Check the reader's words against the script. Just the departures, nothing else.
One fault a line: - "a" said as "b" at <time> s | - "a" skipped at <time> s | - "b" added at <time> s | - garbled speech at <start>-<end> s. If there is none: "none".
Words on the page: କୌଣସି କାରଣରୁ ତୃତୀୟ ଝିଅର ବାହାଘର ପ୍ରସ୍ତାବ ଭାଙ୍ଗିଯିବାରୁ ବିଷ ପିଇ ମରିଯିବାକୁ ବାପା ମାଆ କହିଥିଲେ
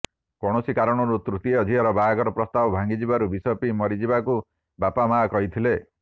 none